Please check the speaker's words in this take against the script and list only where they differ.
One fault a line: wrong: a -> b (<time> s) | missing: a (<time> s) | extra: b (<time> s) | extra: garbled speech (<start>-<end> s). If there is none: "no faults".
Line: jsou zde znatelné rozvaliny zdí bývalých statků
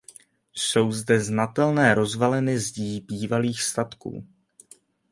no faults